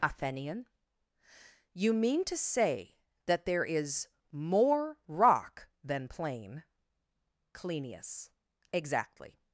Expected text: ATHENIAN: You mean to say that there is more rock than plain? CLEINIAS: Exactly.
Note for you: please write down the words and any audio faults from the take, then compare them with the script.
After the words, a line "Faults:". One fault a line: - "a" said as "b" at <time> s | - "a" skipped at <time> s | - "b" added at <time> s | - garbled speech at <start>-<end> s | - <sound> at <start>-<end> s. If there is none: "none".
ATHENIAN: You mean to say that there is more rock than plain? CLEINIAS: Exactly.
Faults:
none